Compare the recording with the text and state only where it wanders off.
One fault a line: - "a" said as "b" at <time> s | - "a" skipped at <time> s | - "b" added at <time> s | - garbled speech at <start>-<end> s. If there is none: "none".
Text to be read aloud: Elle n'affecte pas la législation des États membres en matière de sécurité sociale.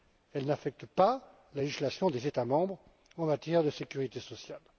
none